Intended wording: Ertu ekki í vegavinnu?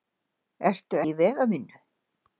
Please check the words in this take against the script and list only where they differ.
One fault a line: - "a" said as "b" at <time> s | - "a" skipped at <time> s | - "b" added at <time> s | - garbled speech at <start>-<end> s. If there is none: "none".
- "ekki" skipped at 1.0 s